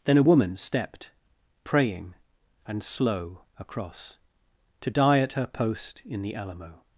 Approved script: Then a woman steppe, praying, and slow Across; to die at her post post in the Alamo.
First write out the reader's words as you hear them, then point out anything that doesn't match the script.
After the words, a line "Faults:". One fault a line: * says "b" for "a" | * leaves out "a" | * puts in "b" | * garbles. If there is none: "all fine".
Then a woman stepped, praying, and slow Across; to die at her post in the Alamo.
Faults:
* says "stepped" for "steppe"
* leaves out "post"